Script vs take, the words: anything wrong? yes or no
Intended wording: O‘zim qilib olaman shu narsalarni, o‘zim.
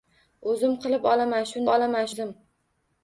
yes